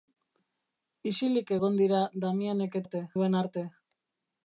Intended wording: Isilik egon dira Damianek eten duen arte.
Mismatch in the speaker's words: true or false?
true